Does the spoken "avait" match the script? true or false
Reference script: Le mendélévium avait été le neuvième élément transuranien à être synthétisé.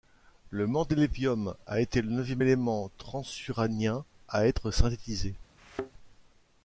false